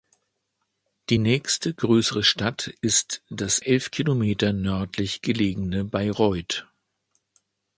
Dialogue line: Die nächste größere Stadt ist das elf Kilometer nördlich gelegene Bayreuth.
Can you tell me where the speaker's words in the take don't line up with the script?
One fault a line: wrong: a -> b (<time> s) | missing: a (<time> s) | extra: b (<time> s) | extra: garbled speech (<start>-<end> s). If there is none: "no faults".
no faults